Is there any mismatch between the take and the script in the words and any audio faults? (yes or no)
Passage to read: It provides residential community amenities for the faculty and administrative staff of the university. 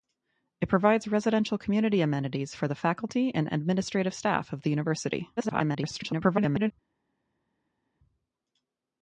yes